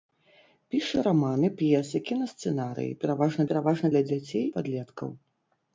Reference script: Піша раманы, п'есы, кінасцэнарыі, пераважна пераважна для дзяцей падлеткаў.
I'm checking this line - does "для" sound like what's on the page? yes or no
yes